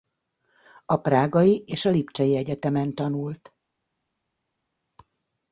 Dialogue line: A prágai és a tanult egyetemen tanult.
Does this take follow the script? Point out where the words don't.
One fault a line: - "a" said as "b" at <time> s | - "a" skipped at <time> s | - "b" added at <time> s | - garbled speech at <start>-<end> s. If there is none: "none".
- "tanult" said as "lipcsei" at 1.9 s